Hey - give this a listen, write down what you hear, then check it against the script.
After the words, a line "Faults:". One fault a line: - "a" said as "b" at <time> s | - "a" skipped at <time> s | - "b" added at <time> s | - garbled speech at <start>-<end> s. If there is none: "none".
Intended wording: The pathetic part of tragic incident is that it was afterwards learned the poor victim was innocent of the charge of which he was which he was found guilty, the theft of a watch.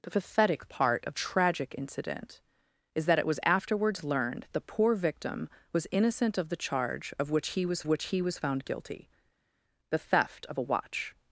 The pathetic part of tragic incident is that it was afterwards learned the poor victim was innocent of the charge of which he was which he was found guilty, the theft of a watch.
Faults:
none